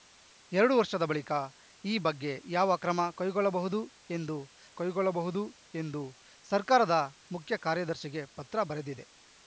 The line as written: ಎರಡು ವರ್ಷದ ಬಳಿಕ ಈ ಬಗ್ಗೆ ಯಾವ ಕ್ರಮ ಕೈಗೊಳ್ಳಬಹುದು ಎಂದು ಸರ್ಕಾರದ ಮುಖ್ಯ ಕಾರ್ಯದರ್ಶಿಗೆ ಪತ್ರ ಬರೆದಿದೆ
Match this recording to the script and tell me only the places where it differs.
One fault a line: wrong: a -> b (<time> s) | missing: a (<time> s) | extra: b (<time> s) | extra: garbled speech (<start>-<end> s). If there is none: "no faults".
extra: ಕೈಗೊಳ್ಳಬಹುದು ಎಂದು (4.8 s)